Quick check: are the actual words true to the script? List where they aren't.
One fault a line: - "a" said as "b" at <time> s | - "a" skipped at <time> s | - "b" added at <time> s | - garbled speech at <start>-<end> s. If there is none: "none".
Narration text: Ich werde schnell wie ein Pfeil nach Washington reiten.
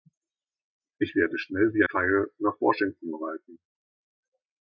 - "ein" skipped at 1.8 s